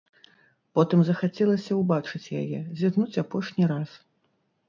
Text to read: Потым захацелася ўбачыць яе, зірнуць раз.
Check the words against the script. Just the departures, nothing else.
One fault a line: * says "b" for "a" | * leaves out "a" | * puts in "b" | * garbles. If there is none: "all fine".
* puts in "апошні"